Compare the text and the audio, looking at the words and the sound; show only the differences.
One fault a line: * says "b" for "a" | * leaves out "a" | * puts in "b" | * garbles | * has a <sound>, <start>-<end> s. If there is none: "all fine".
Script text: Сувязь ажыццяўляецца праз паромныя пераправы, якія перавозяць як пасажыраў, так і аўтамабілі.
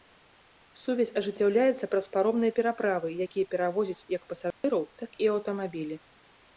* has a dropout, 4.5-4.6 s